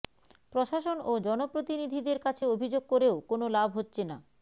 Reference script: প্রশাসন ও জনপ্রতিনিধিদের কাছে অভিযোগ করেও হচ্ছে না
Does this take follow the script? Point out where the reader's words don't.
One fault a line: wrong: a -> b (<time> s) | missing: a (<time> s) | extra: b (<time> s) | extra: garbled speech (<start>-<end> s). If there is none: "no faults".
extra: কোনো লাভ (3.3 s)